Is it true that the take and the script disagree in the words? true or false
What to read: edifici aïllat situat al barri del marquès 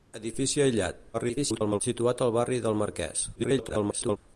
true